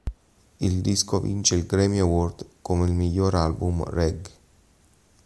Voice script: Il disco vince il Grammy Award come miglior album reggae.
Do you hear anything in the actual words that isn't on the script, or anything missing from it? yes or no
no